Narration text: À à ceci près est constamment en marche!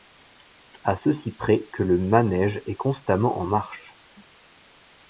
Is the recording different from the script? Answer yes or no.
yes